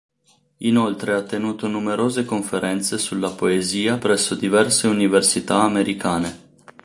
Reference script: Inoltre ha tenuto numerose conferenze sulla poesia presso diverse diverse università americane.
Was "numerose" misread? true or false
false